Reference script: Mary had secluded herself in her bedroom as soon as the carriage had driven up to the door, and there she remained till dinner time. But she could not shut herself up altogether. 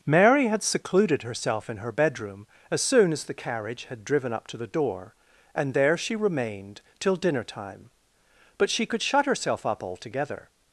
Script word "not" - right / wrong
wrong